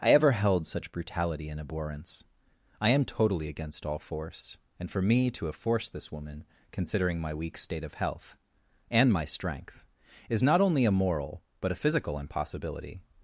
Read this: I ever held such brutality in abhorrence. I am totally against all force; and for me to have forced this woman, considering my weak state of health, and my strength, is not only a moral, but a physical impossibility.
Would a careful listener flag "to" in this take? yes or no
no